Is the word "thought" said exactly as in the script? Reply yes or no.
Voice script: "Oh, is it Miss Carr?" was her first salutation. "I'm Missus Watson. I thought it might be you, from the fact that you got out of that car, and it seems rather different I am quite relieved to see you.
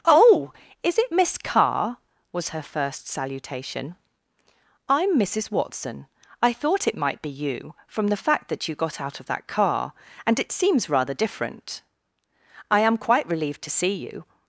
yes